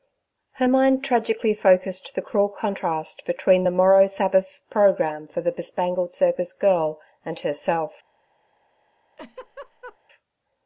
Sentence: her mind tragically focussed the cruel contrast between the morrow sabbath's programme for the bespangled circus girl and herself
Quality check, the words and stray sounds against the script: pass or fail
fail